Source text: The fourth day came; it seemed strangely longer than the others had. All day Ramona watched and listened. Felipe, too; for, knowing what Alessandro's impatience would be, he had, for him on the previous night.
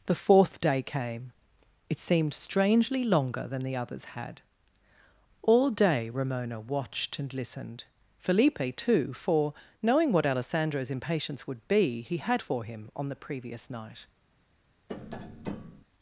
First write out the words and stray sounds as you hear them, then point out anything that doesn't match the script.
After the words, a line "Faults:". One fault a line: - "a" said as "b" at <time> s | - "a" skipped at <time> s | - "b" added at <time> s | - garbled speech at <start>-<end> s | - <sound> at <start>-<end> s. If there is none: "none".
The fourth day came; it seemed strangely longer than the others had. All day Ramona watched and listened. Felipe, too; for, knowing what Alessandro's impatience would be, he had, for him on the previous night.
Faults:
- tap at 14.9-15.9 s